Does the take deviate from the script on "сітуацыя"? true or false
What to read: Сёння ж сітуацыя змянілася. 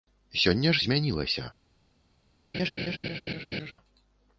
true